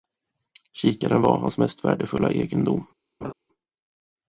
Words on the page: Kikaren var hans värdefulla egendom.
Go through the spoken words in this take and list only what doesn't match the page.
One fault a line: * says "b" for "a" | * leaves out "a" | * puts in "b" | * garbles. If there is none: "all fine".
* puts in "mest"